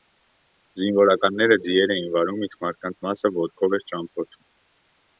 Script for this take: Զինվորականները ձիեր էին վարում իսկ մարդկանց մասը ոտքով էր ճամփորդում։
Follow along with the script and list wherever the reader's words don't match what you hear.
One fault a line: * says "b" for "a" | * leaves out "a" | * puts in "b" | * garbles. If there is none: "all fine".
all fine